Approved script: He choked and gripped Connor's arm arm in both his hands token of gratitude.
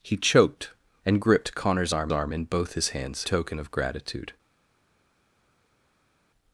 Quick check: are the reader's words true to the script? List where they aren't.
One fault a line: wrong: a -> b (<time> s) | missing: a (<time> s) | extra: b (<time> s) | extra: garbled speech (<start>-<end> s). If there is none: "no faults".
no faults